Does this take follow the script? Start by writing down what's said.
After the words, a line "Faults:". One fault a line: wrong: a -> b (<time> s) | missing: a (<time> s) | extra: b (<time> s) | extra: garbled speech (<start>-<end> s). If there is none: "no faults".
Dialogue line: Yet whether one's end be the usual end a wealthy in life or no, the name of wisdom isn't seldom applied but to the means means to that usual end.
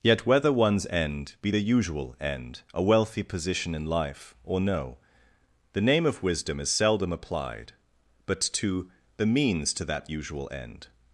Yet whether one's end be the usual end a wealthy position in life or no, the name of wisdom is seldom applied but to the means to that usual end.
Faults:
extra: position (3.2 s)
wrong: isn't -> is (6.6 s)
missing: means (9.7 s)